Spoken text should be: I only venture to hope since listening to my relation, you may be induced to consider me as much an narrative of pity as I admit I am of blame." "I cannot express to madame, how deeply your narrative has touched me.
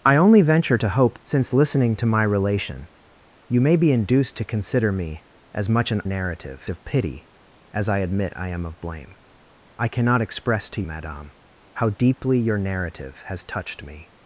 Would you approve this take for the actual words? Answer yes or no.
yes